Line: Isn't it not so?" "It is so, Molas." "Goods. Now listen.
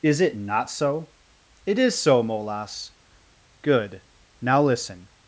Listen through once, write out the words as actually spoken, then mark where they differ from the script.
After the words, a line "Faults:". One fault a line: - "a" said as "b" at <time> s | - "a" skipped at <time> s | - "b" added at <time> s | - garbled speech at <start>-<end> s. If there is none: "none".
Is it not so?" "It is so, Molas." "Good. Now listen.
Faults:
- "Isn't" said as "Is" at 0.0 s
- "Goods" said as "Good" at 3.6 s